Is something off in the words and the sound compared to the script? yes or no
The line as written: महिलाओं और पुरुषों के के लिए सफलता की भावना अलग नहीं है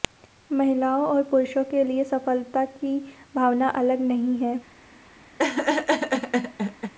yes